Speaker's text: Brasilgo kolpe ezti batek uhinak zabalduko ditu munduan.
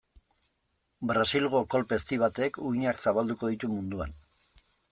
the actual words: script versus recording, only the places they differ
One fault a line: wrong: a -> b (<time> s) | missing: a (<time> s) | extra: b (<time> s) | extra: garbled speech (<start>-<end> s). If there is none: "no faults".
no faults